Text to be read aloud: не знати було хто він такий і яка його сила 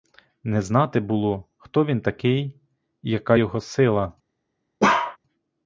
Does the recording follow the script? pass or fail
pass